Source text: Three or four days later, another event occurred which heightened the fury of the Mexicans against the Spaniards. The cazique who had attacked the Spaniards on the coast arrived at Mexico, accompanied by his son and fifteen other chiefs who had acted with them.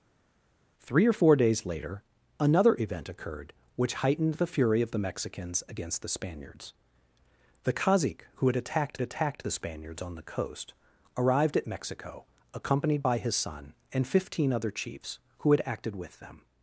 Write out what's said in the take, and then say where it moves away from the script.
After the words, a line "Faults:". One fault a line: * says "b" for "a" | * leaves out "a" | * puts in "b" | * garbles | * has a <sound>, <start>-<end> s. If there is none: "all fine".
Three or four days later, another event occurred which heightened the fury of the Mexicans against the Spaniards. The cazique who had attacked attacked the Spaniards on the coast arrived at Mexico, accompanied by his son and fifteen other chiefs who had acted with them.
Faults:
* puts in "attacked"